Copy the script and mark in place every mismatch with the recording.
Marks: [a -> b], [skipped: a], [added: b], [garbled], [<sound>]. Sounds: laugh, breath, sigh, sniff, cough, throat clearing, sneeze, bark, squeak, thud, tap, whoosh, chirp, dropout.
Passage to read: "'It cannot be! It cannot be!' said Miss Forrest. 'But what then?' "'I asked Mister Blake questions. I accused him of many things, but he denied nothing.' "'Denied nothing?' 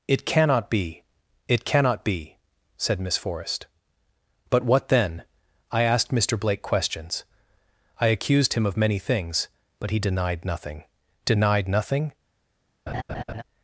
"'It cannot be! It cannot be!' said Miss Forrest. 'But what then?' "'I asked Mister Blake questions. I accused him of many things, but he denied nothing.' "'Denied nothing?' [laugh]